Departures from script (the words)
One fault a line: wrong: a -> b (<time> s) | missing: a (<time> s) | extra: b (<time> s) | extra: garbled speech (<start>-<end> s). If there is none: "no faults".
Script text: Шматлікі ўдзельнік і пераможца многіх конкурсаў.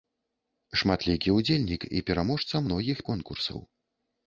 no faults